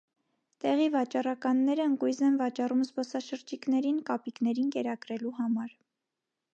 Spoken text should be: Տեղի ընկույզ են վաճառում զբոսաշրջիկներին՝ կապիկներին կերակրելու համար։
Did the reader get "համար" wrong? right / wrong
right